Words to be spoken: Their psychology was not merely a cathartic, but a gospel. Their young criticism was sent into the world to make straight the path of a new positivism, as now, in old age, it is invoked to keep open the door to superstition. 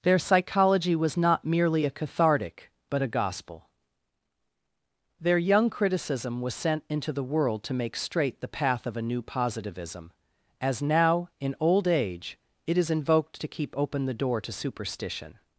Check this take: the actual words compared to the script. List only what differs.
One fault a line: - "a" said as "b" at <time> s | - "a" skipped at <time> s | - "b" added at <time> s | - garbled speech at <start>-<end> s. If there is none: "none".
none